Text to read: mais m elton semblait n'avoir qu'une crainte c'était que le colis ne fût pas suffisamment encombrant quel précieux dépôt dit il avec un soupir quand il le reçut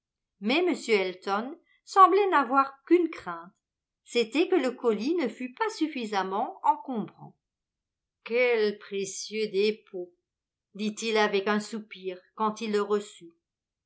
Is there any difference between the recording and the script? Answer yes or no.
no